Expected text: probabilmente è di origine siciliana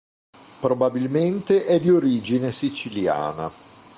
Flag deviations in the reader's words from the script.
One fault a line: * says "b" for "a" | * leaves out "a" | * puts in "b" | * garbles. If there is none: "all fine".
all fine